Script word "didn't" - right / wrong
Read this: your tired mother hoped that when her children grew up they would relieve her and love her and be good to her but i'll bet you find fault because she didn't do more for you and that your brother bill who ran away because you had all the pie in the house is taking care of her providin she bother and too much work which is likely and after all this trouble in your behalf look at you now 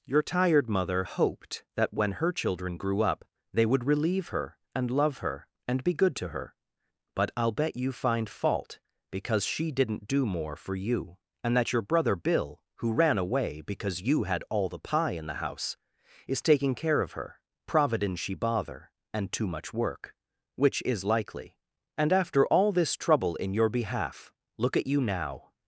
right